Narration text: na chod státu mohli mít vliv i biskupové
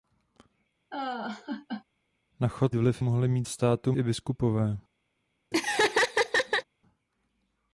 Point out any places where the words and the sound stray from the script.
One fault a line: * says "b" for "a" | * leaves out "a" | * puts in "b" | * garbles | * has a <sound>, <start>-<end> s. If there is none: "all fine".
* has a laugh, 0.9-1.8 s
* says "vliv" for "státu"
* says "státu" for "vliv"
* has a laugh, 5.5-6.6 s